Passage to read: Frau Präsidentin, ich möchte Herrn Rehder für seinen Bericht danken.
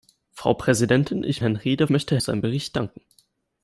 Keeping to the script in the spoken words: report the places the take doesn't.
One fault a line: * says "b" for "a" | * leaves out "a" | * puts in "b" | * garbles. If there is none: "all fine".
* leaves out "möchte"
* says "möchte" for "für"